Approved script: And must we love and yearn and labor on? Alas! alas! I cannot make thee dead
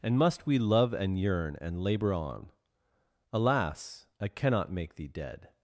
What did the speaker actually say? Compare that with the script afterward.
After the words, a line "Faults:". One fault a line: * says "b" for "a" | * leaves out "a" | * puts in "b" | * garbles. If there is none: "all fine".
And must we love and yearn and labor on? Alas! I cannot make thee dead
Faults:
* leaves out "alas"